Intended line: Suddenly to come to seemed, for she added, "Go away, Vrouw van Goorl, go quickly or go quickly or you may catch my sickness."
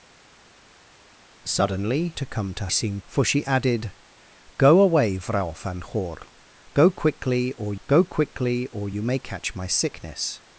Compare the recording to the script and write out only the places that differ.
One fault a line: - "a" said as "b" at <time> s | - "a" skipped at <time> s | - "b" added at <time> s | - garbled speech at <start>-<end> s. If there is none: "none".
none